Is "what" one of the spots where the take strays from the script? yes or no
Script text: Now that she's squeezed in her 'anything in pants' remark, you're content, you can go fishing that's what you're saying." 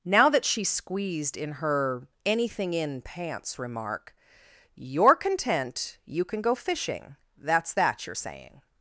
yes